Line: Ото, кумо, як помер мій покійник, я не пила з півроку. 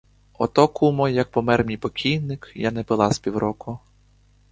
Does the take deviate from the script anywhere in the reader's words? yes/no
no